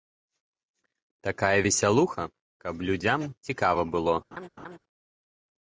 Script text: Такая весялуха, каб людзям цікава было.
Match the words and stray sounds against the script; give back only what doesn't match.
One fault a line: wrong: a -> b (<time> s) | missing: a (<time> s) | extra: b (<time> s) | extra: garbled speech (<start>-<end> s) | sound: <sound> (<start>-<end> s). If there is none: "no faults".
sound: laugh (4.3-4.8 s)